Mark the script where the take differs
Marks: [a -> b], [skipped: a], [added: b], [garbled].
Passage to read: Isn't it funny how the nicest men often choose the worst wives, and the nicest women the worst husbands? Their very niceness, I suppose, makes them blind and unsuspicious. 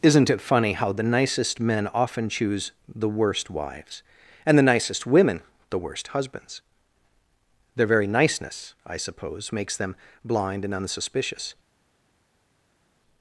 Isn't it funny how the nicest men often choose the worst wives, and the nicest women the worst husbands? Their very niceness, I suppose, makes them blind and unsuspicious.